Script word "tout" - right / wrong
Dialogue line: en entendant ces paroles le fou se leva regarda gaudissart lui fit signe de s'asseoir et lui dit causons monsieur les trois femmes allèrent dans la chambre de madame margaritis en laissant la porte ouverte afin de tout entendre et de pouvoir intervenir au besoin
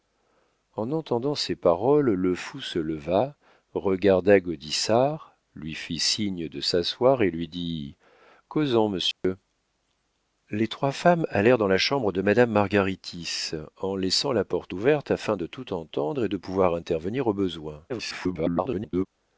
right